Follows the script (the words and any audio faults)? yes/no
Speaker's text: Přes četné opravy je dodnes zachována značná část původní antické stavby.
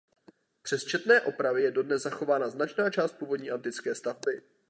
yes